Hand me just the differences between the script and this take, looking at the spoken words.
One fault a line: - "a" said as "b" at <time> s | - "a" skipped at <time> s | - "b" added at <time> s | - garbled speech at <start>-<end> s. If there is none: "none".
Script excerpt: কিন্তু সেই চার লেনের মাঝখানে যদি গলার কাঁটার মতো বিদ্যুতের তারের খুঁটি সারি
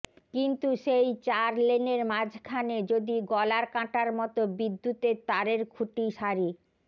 none